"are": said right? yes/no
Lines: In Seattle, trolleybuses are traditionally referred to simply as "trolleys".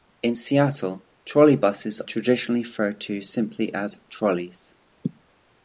no